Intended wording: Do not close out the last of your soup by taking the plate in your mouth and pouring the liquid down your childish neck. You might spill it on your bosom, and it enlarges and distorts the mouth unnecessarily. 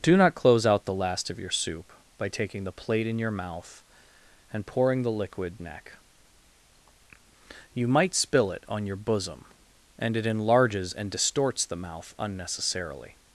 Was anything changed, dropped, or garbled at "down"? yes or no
yes